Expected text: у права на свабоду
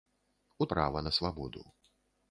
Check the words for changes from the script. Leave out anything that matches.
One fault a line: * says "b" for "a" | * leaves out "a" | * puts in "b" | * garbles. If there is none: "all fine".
all fine